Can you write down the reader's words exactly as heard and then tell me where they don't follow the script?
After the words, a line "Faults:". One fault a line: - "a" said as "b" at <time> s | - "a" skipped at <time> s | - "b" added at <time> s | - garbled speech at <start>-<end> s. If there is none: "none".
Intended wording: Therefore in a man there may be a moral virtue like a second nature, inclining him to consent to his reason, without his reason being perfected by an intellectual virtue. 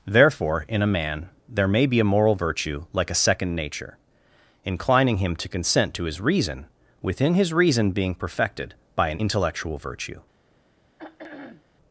Therefore in a man there may be a moral virtue like a second nature, inclining him to consent to his reason, within his reason being perfected by an intellectual virtue.
Faults:
- "without" said as "within" at 7.0 s